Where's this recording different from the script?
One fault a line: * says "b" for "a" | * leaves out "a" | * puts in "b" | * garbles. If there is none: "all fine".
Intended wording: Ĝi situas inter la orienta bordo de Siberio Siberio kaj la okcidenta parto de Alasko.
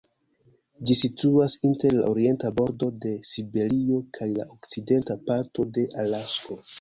* leaves out "Siberio"